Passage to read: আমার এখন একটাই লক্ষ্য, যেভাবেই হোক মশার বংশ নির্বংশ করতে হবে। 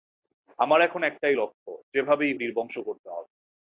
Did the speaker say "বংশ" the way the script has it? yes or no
no